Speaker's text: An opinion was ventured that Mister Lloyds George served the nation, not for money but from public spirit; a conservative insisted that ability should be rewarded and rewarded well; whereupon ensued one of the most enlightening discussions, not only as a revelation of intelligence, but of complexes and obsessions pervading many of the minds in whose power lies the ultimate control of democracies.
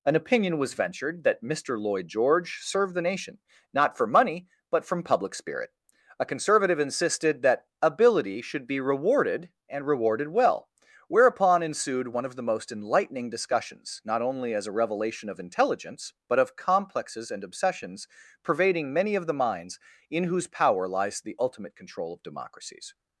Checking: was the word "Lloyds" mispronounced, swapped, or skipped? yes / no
yes